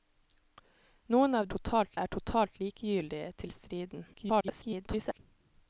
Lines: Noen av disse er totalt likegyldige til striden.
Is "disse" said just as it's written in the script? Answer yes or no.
no